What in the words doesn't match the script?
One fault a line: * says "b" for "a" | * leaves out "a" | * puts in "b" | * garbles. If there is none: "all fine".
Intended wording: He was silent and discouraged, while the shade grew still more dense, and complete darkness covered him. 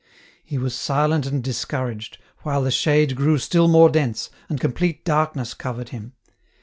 all fine